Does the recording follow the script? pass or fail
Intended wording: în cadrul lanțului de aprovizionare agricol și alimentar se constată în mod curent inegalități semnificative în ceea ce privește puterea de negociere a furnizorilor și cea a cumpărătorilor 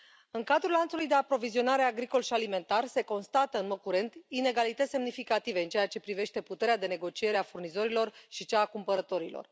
pass